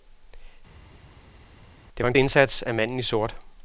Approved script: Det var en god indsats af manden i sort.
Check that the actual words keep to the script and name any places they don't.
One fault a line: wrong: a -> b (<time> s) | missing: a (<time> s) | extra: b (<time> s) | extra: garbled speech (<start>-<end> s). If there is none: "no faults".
missing: god (2.1 s)